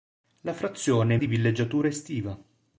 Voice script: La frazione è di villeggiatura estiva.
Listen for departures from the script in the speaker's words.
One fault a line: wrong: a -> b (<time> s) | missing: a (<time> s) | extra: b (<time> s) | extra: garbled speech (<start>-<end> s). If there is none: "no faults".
no faults